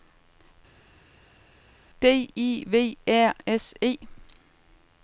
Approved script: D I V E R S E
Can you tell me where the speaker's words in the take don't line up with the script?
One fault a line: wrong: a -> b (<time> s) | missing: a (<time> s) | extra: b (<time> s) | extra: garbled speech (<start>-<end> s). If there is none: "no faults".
missing: E (3.0 s)